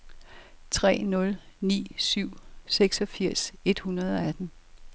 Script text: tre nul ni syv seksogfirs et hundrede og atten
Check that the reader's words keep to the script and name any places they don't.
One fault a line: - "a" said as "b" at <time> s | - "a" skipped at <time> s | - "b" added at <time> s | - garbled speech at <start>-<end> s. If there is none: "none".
none